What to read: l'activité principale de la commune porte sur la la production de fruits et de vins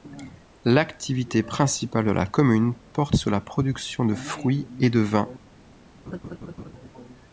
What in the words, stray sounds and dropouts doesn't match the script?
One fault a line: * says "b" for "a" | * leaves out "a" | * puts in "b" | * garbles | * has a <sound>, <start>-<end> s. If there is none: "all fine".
* leaves out "la"
* has a laugh, 6.1-6.7 s